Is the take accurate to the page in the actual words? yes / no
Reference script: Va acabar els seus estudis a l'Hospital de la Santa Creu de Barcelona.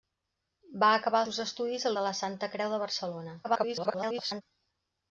no